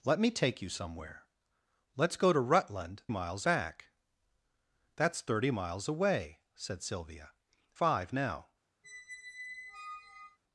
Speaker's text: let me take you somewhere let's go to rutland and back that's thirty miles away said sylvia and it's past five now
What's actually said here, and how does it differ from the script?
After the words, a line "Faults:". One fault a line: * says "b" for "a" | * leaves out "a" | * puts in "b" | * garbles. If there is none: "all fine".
let me take you somewhere let's go to rutland miles back that's thirty miles away said sylvia five now
Faults:
* says "miles" for "and"
* leaves out "and it's past"